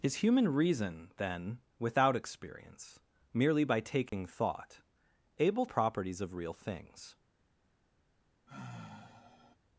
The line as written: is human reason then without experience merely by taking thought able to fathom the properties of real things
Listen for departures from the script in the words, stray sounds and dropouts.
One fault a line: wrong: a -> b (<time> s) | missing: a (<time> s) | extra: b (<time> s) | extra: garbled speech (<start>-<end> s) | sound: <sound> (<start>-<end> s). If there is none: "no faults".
sound: dropout (4.1-4.1 s)
missing: to fathom the (5.7 s)
sound: sigh (8.5-9.6 s)